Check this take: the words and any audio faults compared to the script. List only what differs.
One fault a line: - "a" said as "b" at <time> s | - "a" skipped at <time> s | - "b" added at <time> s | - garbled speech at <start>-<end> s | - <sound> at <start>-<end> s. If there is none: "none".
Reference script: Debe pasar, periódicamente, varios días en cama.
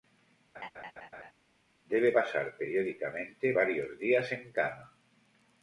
- laugh at 0.5-1.3 s